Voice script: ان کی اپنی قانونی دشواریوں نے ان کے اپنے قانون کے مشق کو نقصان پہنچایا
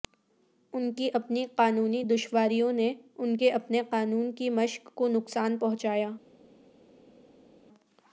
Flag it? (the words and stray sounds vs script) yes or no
yes